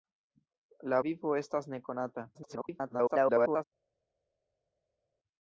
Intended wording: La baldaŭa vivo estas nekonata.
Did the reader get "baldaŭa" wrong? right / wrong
wrong